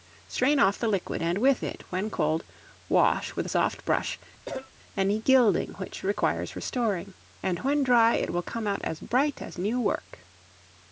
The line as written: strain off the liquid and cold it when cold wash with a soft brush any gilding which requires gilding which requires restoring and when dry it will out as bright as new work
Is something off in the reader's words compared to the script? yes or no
yes